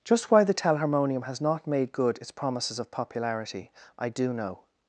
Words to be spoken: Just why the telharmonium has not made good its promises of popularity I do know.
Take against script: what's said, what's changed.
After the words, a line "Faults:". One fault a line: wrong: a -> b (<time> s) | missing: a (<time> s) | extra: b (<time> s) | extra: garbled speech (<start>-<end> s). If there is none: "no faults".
Just why the telharmonium has not made good its promises of popularity I do know.
Faults:
no faults